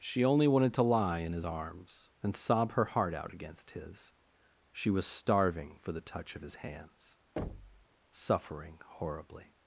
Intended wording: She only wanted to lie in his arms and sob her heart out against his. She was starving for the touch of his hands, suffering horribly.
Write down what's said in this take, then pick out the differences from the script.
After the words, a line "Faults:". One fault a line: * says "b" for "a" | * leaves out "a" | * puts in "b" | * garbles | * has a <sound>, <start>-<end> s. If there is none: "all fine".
She only wanted to lie in his arms and sob her heart out against his. She was starving for the touch of his hands, suffering horribly.
Faults:
* has a thud, 7.4-7.9 s